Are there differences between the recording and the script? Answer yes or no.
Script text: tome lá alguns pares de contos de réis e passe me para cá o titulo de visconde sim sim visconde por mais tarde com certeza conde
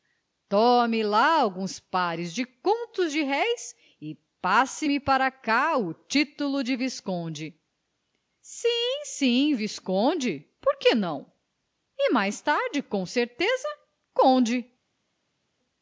yes